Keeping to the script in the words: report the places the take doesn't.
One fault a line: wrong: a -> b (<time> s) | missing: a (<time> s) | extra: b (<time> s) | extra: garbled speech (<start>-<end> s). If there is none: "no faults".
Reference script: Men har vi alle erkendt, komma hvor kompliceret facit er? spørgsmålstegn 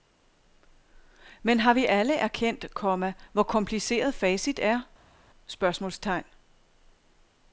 no faults